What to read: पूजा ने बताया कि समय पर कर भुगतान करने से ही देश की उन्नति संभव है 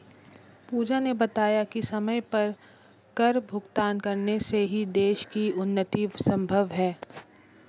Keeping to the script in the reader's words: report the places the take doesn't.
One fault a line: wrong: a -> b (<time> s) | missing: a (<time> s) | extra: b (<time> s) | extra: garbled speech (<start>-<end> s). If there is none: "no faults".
no faults